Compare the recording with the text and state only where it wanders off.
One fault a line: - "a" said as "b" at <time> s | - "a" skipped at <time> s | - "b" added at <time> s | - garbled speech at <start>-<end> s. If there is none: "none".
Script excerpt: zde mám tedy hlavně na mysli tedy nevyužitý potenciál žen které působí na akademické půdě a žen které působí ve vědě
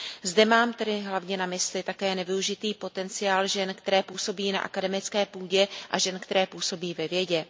- "tedy" said as "také" at 1.8 s